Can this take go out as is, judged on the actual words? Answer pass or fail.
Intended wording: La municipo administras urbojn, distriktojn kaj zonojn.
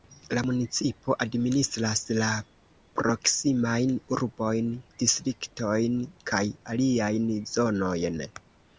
fail